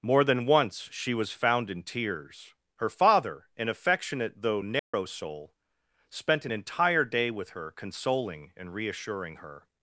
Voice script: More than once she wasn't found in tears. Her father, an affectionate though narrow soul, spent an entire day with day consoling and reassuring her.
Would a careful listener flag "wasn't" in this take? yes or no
yes